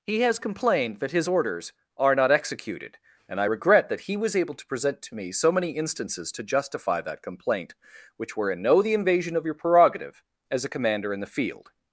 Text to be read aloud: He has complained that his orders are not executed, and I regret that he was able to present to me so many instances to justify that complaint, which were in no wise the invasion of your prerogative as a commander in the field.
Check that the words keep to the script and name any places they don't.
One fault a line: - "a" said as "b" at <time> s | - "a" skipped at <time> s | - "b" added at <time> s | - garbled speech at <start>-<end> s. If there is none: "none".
- "wise" skipped at 8.8 s